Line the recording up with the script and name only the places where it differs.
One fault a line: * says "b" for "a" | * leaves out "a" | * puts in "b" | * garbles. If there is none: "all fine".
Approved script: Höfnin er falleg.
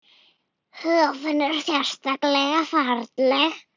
* puts in "sérleg"